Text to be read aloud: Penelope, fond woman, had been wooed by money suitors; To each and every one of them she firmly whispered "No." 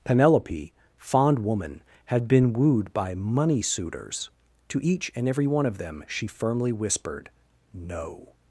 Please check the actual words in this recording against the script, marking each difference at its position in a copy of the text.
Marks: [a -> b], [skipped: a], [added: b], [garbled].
Penelope, fond woman, had been wooed by money suitors; To each and every one of them she firmly whispered "No."